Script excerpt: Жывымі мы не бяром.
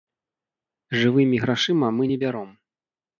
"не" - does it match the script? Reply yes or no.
yes